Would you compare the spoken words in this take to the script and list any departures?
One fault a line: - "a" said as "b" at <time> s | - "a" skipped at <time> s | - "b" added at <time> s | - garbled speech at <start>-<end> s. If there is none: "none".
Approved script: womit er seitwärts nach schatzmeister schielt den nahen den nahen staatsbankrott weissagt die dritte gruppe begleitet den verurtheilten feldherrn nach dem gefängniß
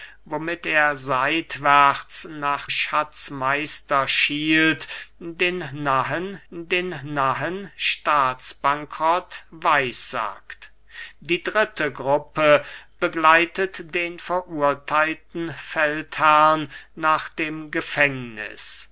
none